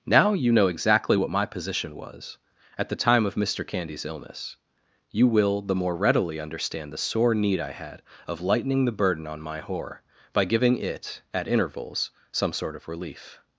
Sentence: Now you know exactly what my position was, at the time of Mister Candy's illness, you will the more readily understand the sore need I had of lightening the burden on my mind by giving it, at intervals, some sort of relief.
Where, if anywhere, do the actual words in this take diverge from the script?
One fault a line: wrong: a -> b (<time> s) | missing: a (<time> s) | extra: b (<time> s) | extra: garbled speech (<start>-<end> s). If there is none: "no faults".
wrong: mind -> whore (9.6 s)